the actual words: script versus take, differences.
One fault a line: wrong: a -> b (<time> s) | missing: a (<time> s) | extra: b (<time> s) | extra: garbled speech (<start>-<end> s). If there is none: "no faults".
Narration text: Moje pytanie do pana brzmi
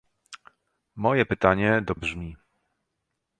missing: pana (1.9 s)